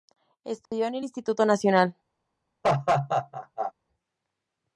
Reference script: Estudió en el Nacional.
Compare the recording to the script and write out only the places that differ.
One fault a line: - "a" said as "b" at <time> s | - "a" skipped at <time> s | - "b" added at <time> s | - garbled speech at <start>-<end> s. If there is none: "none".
- "Instituto" added at 1.0 s